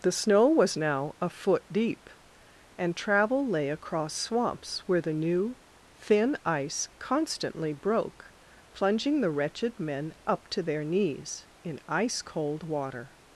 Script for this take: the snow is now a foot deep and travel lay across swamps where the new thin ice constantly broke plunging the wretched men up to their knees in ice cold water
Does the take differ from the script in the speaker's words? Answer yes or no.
yes